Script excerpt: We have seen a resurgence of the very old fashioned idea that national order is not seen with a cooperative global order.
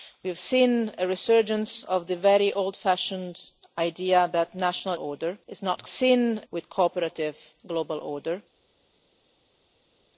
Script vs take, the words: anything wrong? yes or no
no